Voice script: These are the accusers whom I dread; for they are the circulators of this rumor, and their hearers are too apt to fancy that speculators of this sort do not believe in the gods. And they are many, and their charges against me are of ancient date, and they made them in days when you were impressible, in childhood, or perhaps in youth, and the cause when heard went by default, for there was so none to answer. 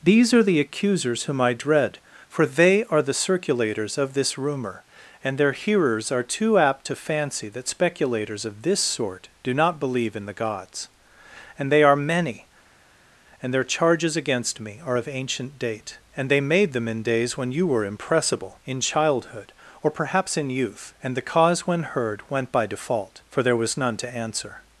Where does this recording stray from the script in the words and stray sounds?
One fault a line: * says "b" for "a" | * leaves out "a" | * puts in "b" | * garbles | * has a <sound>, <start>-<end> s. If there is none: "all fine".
* leaves out "so"